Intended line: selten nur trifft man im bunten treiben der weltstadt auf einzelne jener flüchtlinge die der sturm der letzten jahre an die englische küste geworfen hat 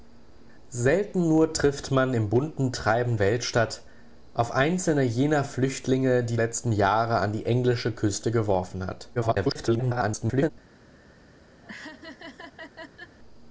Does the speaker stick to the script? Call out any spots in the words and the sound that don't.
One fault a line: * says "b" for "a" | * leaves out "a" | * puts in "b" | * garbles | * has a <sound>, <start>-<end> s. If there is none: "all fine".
* leaves out "der"
* leaves out "der sturm der"
* garbles
* has a laugh, 11.6-13.2 s